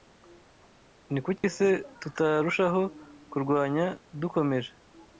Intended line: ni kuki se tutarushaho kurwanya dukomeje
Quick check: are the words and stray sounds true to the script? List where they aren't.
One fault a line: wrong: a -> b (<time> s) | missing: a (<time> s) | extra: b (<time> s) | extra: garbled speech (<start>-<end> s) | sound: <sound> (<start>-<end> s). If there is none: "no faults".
sound: dropout (1.4-1.4 s)